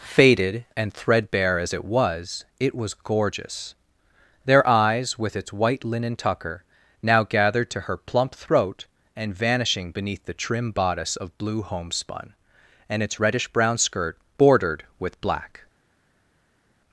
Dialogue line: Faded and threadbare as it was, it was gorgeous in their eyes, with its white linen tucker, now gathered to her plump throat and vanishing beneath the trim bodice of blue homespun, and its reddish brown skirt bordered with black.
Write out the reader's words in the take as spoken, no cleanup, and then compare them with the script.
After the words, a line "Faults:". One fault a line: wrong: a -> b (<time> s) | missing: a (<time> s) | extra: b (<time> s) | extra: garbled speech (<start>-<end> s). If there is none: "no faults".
Faded and threadbare as it was, it was gorgeous their eyes, with its white linen tucker, now gathered to her plump throat and vanishing beneath the trim bodice of blue homespun, and its reddish brown skirt bordered with black.
Faults:
missing: in (3.8 s)